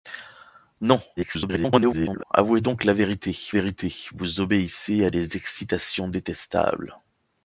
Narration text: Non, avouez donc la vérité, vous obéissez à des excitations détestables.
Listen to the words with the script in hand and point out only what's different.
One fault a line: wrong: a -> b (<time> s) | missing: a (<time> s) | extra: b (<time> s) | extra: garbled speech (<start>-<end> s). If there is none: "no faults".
extra: garbled speech (1.2-2.2 s)
extra: vérité (3.5 s)